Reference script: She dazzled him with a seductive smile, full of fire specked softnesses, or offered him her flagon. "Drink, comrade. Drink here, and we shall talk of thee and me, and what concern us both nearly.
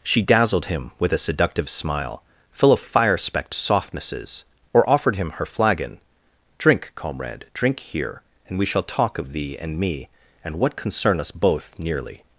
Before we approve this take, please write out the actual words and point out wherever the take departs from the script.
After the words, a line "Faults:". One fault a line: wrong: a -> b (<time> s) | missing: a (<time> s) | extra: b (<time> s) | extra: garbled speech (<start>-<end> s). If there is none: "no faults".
She dazzled him with a seductive smile, full of fire specked softnesses, or offered him her flagon. "Drink, comrade. Drink here, and we shall talk of thee and me, and what concern us both nearly.
Faults:
no faults